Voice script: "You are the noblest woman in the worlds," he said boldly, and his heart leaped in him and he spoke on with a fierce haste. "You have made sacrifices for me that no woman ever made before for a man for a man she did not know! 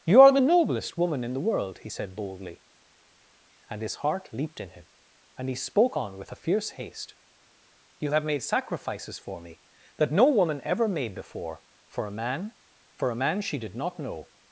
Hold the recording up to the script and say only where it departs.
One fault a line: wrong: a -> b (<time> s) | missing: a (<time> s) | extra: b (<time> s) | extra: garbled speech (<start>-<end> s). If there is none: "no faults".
wrong: worlds -> world (1.4 s)